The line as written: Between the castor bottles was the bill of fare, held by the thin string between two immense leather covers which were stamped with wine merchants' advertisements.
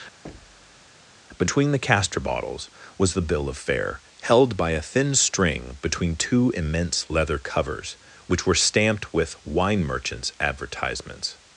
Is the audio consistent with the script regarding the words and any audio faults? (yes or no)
no